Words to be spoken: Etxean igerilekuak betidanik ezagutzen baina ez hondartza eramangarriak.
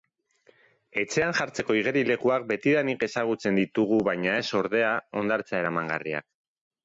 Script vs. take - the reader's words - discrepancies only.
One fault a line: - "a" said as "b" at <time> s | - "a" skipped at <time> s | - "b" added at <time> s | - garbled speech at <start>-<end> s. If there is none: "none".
- "jartzeko" added at 1.4 s
- "ditugu" added at 3.6 s
- "ordea" added at 4.6 s